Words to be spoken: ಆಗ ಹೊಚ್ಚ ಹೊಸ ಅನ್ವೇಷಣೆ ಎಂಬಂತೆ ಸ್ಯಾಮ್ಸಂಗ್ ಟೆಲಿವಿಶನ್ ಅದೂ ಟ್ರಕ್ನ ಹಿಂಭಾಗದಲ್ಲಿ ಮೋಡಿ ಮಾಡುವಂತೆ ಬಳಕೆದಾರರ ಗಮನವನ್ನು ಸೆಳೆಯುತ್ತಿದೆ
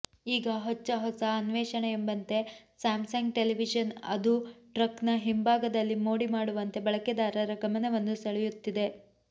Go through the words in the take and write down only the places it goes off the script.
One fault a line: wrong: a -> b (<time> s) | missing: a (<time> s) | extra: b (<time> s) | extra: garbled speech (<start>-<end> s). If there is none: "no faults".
wrong: ಆಗ -> ಈಗ (0.3 s)